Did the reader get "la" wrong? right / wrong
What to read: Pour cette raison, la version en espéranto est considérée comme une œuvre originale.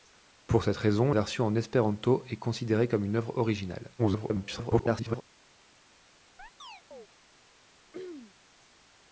wrong